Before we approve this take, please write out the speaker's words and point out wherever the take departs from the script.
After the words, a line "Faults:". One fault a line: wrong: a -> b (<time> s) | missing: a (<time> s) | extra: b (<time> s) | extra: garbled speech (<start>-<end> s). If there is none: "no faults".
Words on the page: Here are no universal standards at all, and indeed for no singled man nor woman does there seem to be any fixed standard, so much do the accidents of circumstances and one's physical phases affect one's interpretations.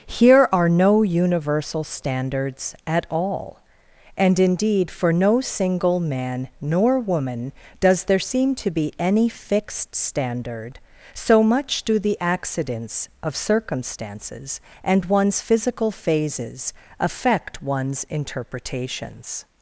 Here are no universal standards at all, and indeed for no single man nor woman does there seem to be any fixed standard, so much do the accidents of circumstances and one's physical phases affect one's interpretations.
Faults:
wrong: singled -> single (5.4 s)